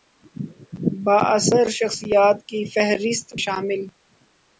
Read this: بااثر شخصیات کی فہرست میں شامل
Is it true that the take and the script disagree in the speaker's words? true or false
true